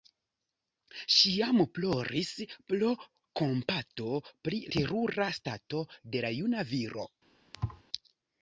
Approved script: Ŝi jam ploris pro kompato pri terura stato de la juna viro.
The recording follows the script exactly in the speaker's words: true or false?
true